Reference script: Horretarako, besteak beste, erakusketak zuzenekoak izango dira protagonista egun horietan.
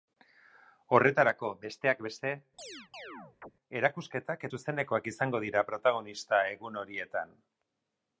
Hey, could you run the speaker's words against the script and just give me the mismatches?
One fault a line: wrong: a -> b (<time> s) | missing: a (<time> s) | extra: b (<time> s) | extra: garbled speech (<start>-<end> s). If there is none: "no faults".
no faults